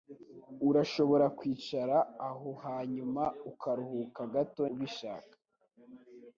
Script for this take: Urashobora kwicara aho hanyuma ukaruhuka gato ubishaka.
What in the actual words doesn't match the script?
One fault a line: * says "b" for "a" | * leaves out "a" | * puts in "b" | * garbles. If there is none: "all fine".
all fine